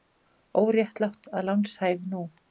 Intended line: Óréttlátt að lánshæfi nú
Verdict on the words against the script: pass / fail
pass